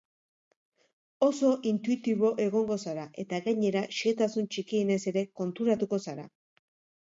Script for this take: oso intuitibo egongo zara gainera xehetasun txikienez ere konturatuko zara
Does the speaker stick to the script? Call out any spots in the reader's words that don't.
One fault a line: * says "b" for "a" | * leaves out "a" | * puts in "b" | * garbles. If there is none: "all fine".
* puts in "eta"